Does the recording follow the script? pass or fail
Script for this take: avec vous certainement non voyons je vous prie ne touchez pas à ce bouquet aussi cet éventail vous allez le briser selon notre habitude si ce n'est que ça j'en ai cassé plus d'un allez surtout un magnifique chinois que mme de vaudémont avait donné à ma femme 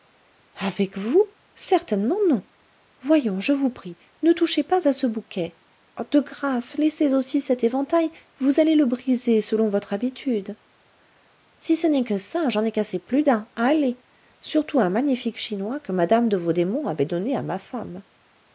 fail